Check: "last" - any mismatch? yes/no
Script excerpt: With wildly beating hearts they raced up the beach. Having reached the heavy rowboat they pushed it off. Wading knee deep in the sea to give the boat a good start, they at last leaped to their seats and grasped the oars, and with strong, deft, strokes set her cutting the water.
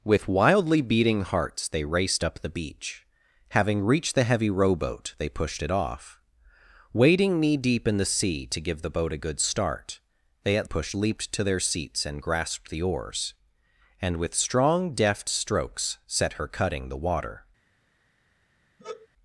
yes